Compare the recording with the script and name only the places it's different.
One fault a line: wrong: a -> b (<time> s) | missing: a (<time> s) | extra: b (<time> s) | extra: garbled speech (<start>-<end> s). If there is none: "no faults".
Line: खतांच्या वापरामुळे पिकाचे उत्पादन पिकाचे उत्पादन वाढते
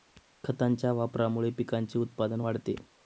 missing: पिकाचे उत्पादन (2.4 s)